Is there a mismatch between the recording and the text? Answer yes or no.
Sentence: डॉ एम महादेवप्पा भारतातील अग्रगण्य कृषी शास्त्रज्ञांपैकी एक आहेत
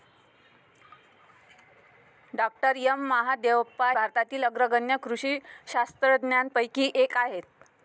no